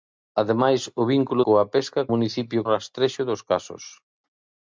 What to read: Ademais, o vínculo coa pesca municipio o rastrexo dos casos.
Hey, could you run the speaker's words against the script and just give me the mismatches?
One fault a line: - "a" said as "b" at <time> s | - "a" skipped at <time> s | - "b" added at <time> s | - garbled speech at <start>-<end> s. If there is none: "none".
none